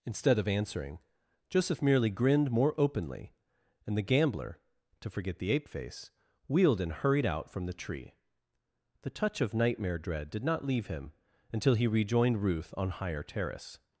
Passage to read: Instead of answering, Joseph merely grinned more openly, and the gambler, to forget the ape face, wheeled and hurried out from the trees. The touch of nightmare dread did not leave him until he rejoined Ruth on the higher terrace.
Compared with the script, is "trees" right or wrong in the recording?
wrong